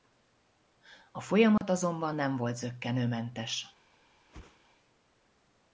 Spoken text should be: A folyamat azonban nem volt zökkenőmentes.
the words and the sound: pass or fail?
fail